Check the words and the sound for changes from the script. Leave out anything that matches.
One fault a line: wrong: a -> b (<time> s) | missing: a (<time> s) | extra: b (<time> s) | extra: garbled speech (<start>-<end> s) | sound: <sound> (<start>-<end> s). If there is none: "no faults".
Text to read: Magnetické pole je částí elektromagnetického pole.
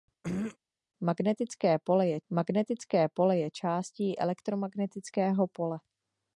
sound: throat clearing (0.2-0.6 s)
extra: magnetické pole je (2.3 s)